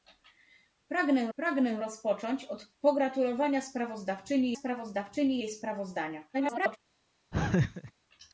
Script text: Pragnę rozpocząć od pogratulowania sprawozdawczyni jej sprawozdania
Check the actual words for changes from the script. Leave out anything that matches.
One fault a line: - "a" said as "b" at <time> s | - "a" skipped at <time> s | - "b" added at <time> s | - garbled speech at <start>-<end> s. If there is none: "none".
- "pragnę" added at 1.3 s
- "sprawozdawczyni" added at 4.5 s
- garbled speech at 6.3-6.8 s